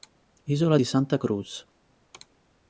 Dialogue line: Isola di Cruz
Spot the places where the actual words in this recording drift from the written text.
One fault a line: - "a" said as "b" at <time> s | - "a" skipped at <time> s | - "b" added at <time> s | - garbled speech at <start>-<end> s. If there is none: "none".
- "Santa" added at 0.8 s